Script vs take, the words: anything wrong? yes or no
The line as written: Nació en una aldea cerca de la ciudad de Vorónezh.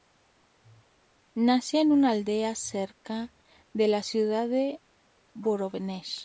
no